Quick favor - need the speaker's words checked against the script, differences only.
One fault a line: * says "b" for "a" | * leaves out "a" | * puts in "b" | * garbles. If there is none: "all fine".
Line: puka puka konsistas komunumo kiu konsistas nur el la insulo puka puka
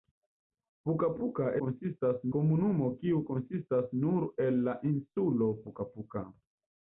all fine